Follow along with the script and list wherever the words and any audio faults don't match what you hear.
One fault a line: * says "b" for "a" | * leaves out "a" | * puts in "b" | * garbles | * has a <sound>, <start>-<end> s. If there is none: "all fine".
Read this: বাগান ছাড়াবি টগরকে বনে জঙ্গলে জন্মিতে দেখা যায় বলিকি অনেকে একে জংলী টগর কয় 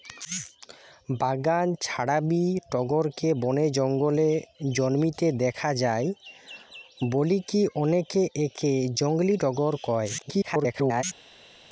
* garbles